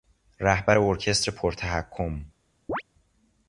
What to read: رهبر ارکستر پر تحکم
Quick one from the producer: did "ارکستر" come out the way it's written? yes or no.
yes